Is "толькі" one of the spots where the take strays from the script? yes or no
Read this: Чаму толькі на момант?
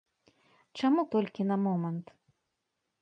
no